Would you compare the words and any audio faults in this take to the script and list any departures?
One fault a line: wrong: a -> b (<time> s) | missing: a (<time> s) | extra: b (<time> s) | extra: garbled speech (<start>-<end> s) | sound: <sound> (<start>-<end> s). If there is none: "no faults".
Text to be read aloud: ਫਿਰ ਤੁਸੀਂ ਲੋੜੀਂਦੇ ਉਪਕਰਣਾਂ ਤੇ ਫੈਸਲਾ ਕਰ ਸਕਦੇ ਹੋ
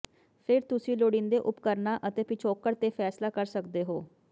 extra: ਅਤੇ ਪਿਛੋਕੜ (2.1 s)